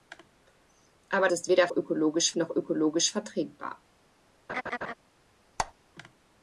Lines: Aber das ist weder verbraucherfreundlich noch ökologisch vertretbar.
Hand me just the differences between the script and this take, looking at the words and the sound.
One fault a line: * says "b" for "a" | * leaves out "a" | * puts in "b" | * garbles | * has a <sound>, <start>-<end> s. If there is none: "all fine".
* leaves out "das"
* says "ökologisch" for "verbraucherfreundlich"
* has a laugh, 4.5-4.9 s
* has a squeak, 5.6-5.7 s